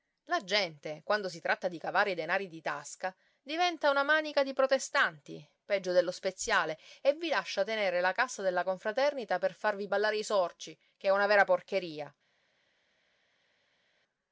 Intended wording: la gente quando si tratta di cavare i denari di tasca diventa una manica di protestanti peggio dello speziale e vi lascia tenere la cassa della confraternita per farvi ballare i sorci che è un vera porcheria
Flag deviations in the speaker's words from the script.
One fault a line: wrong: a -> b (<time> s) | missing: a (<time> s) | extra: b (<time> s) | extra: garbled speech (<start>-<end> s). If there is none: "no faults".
wrong: un -> una (11.1 s)